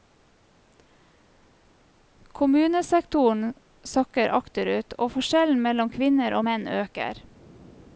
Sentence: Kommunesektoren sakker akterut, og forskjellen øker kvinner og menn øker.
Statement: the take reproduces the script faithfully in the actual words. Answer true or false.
false